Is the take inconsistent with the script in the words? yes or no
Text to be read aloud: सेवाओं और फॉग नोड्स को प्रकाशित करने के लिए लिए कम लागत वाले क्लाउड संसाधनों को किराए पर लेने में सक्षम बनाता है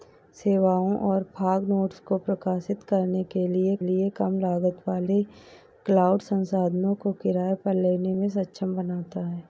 no